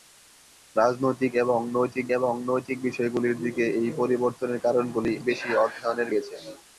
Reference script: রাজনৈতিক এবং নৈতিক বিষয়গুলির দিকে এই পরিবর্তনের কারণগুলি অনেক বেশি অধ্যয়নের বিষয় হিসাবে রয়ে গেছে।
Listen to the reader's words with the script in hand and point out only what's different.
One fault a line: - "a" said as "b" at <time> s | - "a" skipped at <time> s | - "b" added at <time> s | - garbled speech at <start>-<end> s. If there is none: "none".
- "এবং নৈতিক" added at 2.2 s
- "অনেক" skipped at 5.1 s
- "বিষয় হিসাবে রয়ে" skipped at 6.1 s